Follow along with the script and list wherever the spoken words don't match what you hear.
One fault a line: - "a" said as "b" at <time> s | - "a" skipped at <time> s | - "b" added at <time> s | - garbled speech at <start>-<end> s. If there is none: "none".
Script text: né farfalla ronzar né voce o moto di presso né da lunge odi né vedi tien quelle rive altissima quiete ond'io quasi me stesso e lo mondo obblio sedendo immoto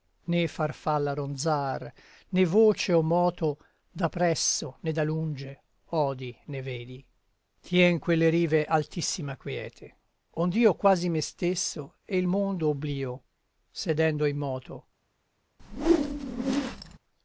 - "di" said as "da" at 3.9 s
- "lo" said as "il" at 12.2 s